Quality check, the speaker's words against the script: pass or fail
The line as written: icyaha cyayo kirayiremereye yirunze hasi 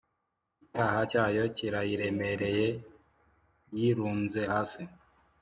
pass